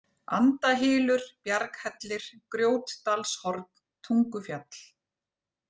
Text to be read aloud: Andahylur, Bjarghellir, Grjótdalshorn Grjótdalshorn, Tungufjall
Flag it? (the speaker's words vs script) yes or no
yes